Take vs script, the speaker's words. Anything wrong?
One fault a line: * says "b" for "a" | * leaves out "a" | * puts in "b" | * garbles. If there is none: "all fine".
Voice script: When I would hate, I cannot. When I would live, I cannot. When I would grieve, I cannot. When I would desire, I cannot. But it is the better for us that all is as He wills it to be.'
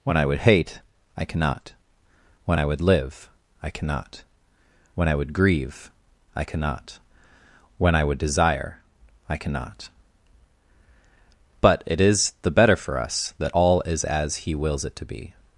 all fine